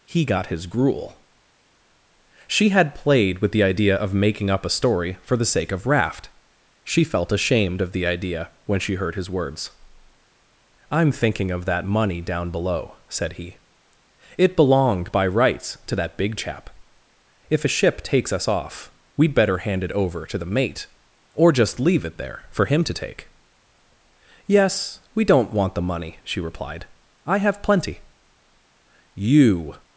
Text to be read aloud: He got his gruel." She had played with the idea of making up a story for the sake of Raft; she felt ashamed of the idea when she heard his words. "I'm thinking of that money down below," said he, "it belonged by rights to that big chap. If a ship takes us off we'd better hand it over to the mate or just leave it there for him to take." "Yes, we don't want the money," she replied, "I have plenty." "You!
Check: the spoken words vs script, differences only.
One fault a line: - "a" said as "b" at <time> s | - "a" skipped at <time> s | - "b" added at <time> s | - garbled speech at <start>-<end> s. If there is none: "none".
none